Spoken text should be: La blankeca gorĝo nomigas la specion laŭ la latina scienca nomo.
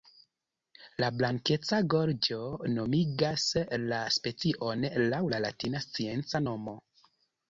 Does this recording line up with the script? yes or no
yes